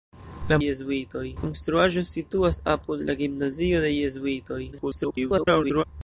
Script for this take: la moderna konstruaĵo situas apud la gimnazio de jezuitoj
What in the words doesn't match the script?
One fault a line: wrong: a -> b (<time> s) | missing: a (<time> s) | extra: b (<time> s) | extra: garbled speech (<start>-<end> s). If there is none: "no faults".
wrong: moderna -> jezuitoj (0.6 s)
extra: garbled speech (4.7-5.8 s)